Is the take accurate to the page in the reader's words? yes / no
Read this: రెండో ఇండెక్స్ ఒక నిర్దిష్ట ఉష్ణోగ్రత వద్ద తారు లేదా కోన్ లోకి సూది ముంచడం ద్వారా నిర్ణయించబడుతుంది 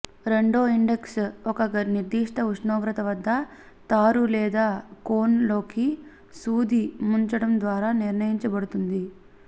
yes